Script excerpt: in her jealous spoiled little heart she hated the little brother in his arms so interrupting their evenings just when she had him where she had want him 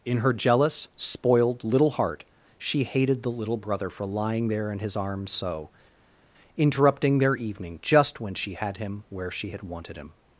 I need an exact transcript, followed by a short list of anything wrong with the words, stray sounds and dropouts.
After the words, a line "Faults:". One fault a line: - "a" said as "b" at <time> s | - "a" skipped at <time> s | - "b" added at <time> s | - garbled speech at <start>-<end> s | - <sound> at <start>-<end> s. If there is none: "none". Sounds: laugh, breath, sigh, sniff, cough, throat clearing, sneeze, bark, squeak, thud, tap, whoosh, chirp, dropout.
in her jealous spoiled little heart she hated the little brother for lying there in his arms so interrupting their evening just when she had him where she had wanted him
Faults:
- "for lying there" added at 3.9 s
- "evenings" said as "evening" at 7.3 s
- "want" said as "wanted" at 9.6 s